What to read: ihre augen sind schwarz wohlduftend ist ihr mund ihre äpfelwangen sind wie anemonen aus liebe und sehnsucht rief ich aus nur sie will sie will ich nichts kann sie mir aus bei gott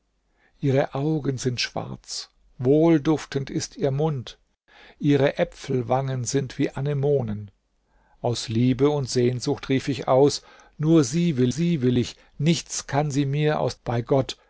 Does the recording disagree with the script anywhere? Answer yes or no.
no